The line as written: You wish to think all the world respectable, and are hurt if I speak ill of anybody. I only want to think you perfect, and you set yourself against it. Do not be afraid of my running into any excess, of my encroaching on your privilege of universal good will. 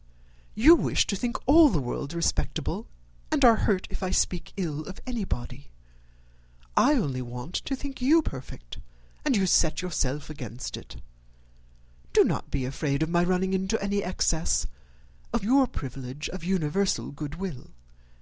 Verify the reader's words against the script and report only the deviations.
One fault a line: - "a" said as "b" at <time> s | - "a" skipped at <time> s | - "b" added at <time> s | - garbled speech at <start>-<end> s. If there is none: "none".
- "my encroaching on" skipped at 15.4 s